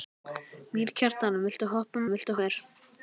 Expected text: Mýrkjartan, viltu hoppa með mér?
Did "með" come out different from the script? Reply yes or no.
yes